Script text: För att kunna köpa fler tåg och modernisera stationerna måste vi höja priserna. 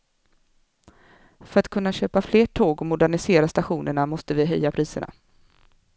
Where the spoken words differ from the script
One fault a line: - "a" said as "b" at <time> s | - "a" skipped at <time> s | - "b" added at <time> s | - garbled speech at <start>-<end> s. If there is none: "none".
none